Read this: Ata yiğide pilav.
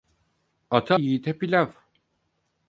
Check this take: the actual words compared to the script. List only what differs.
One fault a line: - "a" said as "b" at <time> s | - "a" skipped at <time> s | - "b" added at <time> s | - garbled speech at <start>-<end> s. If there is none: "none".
none